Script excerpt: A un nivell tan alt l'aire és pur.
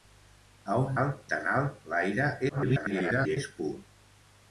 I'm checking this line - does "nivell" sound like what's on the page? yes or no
no